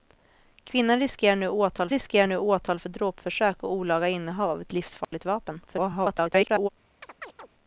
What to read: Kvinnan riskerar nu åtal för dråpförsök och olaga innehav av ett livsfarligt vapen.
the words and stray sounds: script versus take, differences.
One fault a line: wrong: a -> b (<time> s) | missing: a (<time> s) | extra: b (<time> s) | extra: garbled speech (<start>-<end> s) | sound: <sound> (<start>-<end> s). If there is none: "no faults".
extra: riskerar nu åtal (1.9 s)
sound: dropout (5.0-5.1 s)
extra: garbled speech (5.7-6.7 s)
sound: chirp (7.0-7.5 s)